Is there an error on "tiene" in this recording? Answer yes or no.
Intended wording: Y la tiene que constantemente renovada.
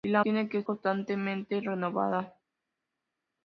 no